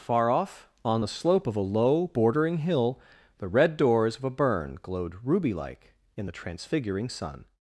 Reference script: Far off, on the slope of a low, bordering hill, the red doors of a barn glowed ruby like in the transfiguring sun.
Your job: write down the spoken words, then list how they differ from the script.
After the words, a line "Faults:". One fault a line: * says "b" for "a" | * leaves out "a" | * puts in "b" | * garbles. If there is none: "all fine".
Far off, on the slope of a low, bordering hill, the red doors of a burn glowed ruby like in the transfiguring sun.
Faults:
* says "burn" for "barn"